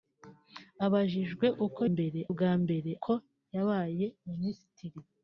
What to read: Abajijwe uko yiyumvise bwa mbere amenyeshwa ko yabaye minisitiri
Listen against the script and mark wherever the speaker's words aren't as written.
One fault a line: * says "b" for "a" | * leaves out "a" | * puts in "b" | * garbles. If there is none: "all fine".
* says "mbere" for "yiyumvise"
* leaves out "amenyeshwa"